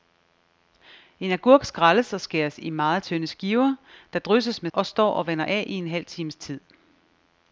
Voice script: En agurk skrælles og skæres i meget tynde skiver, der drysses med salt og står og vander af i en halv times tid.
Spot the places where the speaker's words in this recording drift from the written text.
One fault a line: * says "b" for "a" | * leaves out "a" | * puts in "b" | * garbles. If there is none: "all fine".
* leaves out "salt"